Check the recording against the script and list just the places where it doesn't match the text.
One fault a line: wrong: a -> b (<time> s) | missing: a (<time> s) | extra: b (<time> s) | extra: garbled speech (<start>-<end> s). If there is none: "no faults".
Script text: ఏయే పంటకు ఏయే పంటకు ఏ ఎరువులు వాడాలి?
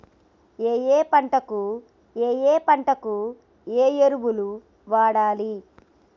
no faults